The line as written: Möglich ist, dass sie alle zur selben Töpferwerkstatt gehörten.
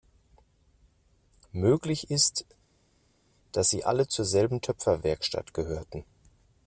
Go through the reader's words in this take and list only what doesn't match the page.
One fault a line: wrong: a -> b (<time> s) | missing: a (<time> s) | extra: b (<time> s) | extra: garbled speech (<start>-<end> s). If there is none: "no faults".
no faults